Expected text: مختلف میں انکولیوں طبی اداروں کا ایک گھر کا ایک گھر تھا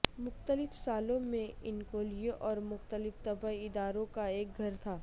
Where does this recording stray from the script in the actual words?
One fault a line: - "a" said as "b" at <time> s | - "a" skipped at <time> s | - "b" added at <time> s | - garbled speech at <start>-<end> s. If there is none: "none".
- "سالوں" added at 0.8 s
- "اور مختلف" added at 2.4 s
- "کا ایک گھر" skipped at 4.8 s